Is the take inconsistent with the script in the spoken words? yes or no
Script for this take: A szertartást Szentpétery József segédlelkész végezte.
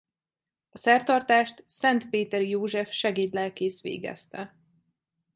no